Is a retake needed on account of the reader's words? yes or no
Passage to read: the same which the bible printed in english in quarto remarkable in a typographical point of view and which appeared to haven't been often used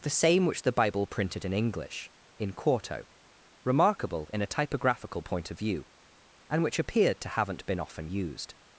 no